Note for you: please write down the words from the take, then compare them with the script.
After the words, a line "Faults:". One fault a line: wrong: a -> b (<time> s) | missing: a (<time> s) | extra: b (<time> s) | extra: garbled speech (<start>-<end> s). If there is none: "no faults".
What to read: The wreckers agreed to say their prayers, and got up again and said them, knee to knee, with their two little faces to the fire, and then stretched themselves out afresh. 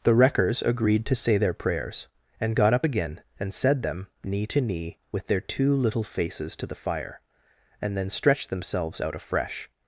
The wreckers agreed to say their prayers, and got up again and said them, knee to knee, with their two little faces to the fire, and then stretched themselves out afresh.
Faults:
no faults